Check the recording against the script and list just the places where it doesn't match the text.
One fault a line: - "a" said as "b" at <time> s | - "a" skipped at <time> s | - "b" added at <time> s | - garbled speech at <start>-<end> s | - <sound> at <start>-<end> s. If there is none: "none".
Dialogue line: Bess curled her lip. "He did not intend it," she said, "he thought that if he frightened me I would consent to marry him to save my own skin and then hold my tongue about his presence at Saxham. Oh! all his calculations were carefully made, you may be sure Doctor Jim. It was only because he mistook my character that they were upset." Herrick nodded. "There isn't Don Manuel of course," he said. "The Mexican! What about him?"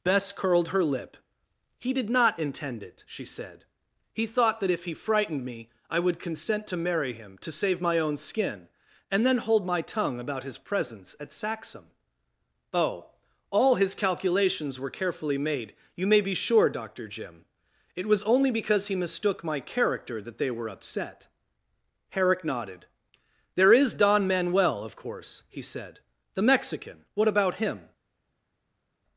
- "isn't" said as "is" at 23.7 s